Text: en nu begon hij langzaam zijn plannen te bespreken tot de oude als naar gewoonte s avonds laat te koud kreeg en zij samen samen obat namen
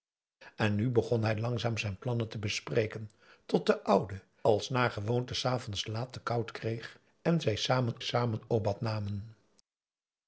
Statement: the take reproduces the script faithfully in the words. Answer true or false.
true